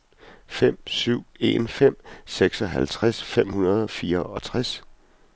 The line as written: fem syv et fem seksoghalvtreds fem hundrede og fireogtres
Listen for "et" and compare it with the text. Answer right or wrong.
wrong